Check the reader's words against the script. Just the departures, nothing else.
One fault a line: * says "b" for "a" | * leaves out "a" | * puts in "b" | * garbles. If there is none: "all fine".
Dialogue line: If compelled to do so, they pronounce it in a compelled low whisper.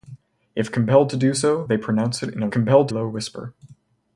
all fine